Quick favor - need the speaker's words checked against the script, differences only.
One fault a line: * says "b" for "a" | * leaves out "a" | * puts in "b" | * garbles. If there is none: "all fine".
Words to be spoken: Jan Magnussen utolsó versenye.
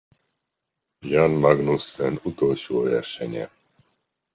all fine